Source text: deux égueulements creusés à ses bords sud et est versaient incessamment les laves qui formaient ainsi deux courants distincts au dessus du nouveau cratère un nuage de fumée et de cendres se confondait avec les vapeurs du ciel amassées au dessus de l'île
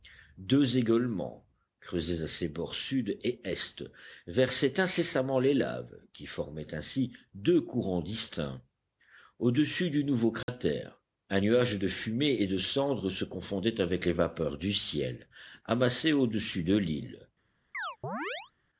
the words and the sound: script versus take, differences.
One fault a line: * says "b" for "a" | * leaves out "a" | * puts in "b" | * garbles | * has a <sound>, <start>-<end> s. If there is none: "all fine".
* has a dropout, 10.4-10.5 s
* has a chirp, 17.7-18.5 s